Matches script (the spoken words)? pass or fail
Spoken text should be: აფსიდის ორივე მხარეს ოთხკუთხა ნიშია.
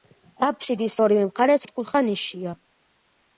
pass